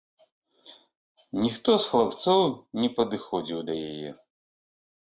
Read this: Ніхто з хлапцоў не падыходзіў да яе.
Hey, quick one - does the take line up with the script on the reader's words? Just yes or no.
yes